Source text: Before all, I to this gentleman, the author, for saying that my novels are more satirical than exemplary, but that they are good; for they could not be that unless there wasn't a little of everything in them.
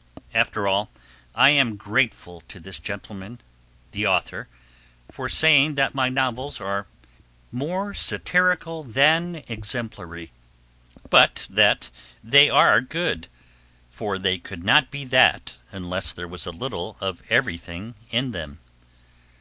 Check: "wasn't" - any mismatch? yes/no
yes